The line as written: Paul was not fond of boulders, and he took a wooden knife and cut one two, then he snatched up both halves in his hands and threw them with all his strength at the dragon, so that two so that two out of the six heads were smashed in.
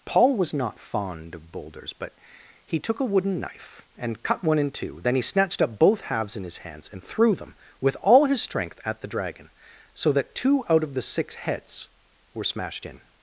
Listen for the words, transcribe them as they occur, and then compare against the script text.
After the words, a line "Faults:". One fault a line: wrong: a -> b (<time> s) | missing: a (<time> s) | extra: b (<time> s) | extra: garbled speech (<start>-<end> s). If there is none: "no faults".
Paul was not fond of boulders, but he took a wooden knife and cut one in two, then he snatched up both halves in his hands and threw them with all his strength at the dragon, so that two out of the six heads were smashed in.
Faults:
wrong: and -> but (1.9 s)
extra: in (4.6 s)
missing: so that two (10.6 s)